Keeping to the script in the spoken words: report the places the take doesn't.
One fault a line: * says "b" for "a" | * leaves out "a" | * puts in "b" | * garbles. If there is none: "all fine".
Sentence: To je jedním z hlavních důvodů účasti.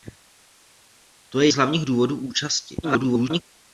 * leaves out "jedním"
* garbles